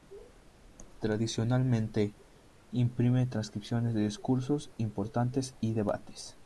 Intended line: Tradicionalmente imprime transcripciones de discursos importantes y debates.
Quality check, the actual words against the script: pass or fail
pass